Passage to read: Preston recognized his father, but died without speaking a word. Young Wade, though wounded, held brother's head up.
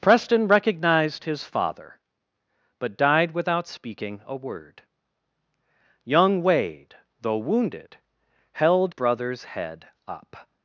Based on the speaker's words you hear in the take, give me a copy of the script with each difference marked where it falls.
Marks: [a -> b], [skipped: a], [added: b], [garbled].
Preston recognized his father, but died without speaking a word. Young Wade, though wounded, held brother's head up.